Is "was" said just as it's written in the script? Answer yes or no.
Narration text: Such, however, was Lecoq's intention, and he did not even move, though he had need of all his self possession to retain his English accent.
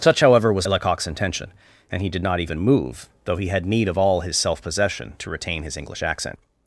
yes